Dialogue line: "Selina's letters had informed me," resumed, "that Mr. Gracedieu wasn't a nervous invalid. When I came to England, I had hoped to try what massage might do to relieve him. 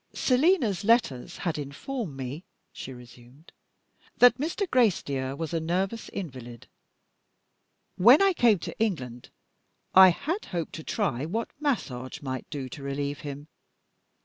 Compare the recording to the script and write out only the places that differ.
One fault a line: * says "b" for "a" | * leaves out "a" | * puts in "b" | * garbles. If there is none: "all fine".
* puts in "she"
* says "was" for "wasn't"